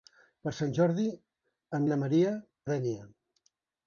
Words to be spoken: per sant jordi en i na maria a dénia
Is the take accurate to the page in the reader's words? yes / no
yes